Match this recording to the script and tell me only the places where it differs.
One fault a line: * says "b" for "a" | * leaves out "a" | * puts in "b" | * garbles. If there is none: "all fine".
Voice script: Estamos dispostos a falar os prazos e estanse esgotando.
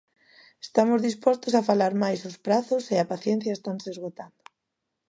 * puts in "mais"
* puts in "a paciencia"